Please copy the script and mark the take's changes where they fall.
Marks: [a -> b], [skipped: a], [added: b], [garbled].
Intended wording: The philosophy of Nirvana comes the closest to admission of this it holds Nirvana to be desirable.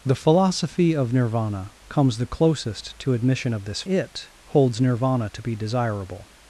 The philosophy of Nirvana comes the closest to admission of this it holds Nirvana to be desirable.